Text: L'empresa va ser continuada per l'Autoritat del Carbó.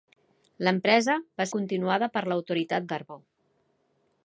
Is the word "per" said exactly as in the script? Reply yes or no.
yes